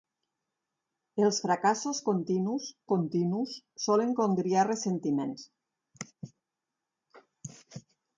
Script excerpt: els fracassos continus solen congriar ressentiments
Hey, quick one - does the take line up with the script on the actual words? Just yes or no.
no